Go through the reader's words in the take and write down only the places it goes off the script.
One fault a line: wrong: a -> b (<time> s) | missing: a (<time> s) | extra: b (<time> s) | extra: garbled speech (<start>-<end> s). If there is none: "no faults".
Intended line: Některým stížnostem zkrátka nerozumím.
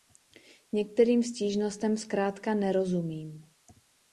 no faults